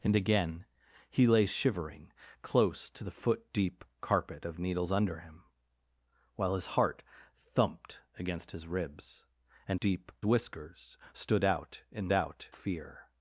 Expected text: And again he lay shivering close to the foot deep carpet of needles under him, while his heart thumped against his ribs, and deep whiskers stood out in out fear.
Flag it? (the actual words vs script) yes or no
no